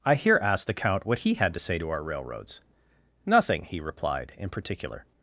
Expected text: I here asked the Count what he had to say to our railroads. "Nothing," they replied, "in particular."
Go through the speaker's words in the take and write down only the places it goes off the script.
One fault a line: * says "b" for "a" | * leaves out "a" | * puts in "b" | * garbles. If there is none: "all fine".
* says "he" for "they"